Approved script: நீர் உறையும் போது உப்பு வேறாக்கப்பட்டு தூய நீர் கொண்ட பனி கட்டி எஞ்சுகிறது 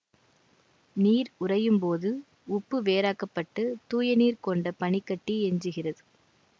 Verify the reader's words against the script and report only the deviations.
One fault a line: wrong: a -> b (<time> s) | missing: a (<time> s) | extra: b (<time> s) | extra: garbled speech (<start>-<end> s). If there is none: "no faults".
no faults